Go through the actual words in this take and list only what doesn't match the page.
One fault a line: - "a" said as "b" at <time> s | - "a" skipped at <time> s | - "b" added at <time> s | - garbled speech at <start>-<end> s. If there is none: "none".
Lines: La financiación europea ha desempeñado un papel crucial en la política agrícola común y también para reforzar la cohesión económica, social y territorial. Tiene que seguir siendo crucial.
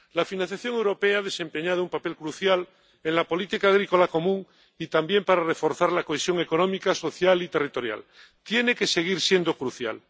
none